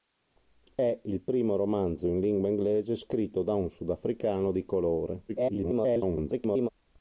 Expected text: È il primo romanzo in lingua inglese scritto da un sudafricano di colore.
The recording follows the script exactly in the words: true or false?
false